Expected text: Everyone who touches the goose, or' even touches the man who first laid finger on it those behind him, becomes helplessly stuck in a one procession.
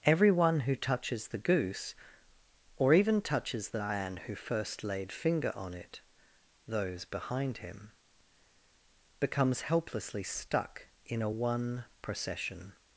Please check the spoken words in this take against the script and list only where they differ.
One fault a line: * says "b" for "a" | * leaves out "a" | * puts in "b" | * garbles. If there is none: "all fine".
all fine